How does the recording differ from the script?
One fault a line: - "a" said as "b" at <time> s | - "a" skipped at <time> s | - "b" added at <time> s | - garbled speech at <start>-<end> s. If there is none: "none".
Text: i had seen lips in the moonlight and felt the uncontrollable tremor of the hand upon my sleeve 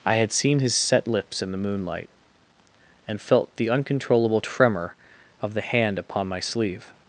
- "his set" added at 0.6 s